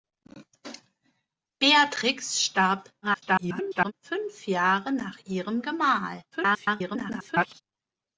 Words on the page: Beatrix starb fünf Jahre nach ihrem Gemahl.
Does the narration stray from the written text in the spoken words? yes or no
yes